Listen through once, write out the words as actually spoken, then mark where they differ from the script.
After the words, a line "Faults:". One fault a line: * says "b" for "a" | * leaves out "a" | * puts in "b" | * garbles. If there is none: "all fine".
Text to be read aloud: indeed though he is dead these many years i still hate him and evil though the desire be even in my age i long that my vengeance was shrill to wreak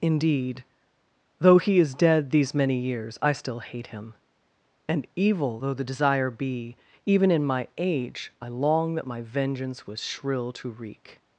indeed though he is dead these many years i still hate him and evil though the desire be even in my age i long that my vengeance was shrill to wreak
Faults:
all fine